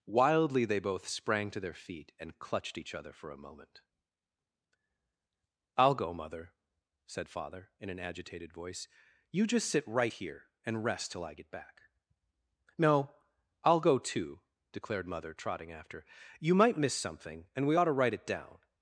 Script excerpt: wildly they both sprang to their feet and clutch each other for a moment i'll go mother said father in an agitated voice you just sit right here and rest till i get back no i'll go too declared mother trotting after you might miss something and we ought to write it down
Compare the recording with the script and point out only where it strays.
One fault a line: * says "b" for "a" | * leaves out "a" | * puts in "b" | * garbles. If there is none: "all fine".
* says "clutched" for "clutch"